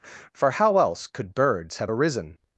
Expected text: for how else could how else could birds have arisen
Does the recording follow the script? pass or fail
fail